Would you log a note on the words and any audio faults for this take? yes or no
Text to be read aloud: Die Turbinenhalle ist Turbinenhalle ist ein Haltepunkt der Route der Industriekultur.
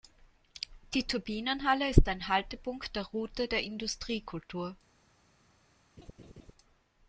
yes